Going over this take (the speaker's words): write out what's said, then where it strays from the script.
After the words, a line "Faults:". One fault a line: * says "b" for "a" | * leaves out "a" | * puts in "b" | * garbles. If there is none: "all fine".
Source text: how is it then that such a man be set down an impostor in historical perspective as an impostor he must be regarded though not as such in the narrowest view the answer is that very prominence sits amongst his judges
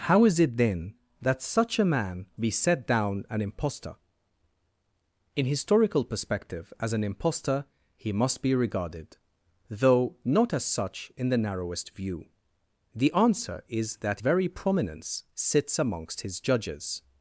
how is it then that such a man be set down an impostor in historical perspective as an impostor he must be regarded though not as such in the narrowest view the answer is that very prominence sits amongst his judges
Faults:
all fine